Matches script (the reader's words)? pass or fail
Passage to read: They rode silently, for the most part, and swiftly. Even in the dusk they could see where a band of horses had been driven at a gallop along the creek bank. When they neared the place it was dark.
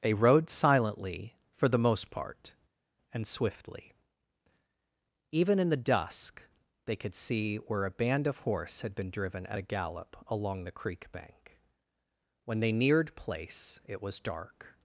fail